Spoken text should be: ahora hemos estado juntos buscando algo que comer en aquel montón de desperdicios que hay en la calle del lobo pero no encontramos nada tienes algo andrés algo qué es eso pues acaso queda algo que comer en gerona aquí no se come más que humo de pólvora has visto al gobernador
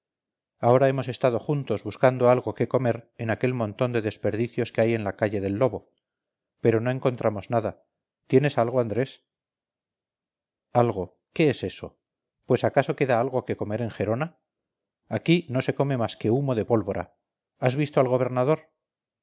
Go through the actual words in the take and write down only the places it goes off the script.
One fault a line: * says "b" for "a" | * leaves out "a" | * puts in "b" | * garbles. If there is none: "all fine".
all fine